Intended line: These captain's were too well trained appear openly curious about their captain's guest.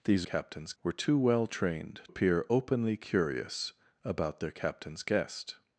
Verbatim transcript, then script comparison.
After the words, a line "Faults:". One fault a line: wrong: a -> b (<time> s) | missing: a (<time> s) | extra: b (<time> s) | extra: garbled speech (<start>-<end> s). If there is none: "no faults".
These captain's were too well trained appear openly curious about their captain's guest.
Faults:
no faults